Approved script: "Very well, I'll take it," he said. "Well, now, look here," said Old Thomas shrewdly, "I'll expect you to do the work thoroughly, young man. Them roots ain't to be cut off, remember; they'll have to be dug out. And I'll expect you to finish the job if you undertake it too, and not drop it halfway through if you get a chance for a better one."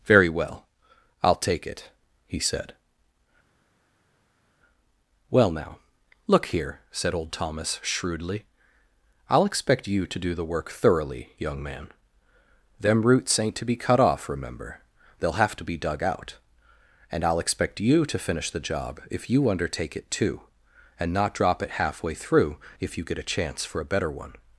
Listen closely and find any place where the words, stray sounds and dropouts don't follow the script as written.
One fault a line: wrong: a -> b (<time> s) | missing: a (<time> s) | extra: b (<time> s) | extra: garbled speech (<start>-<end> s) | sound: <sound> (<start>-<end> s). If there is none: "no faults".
no faults